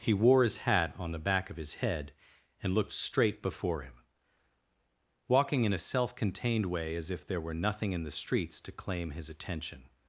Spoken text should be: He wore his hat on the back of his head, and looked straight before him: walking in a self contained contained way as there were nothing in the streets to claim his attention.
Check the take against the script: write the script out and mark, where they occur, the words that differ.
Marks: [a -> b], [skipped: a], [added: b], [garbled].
He wore his hat on the back of his head, and looked straight before him: walking in a self contained [skipped: contained] way as [added: if] there were nothing in the streets to claim his attention.